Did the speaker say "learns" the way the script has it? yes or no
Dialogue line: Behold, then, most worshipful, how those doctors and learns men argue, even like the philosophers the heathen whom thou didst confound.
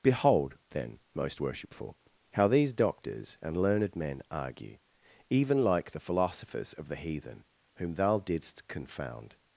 no